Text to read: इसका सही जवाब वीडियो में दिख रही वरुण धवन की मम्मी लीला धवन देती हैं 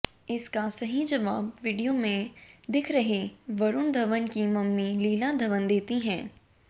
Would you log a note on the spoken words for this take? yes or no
no